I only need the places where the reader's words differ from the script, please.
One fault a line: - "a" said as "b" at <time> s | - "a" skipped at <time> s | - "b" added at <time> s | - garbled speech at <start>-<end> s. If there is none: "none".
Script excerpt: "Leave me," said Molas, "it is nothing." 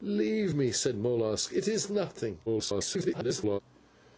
- garbled speech at 2.5-3.6 s